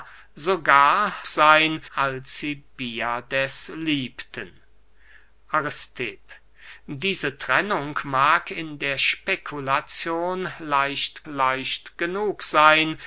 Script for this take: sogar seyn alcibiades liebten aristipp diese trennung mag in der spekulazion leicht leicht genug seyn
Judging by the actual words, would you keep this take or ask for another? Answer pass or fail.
pass